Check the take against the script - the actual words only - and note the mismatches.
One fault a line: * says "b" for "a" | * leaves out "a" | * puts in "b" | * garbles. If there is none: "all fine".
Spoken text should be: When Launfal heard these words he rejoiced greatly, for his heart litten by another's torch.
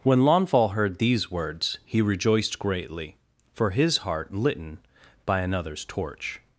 all fine